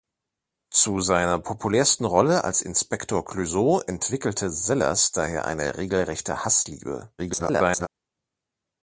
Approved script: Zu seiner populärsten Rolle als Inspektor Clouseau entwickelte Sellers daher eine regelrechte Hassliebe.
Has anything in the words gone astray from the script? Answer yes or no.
yes